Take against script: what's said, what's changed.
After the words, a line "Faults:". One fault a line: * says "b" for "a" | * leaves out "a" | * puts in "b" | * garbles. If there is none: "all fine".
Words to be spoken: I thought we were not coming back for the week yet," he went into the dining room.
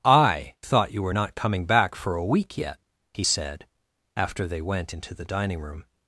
I thought you were not coming back for a week yet," he said, after they went into the dining room.
Faults:
* says "you" for "we"
* says "a" for "the"
* puts in "said after they"